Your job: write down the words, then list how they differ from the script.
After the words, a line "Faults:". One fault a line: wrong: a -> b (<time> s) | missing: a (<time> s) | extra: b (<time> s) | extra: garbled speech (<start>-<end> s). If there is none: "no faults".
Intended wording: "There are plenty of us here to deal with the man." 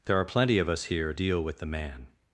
"There are plenty of us here deal with the man."
Faults:
missing: to (1.1 s)